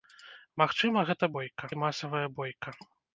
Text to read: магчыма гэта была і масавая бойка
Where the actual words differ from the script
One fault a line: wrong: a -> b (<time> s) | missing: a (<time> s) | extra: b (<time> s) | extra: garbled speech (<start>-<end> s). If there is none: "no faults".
wrong: была -> бойка (1.4 s)